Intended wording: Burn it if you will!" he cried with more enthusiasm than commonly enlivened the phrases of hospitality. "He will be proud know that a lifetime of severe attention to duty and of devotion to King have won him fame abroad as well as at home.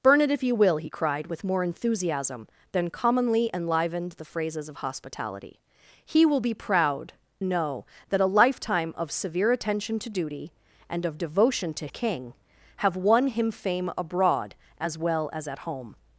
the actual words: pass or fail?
pass